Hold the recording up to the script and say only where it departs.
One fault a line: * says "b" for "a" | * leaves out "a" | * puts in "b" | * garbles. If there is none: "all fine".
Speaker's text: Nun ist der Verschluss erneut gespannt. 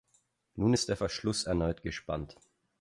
all fine